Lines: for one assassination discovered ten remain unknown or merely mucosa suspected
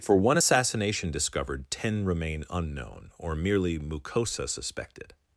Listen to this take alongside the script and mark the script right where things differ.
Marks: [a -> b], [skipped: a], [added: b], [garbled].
for one assassination discovered ten remain unknown or merely mucosa suspected